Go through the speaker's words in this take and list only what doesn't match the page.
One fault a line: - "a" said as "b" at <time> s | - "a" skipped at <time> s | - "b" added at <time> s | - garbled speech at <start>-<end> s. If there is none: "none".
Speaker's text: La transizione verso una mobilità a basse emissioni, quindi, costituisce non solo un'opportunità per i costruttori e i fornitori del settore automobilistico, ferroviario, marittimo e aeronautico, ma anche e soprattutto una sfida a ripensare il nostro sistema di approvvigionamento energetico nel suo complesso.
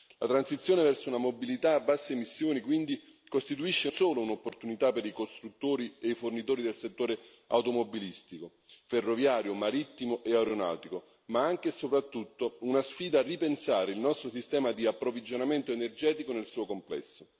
- "non" skipped at 3.9 s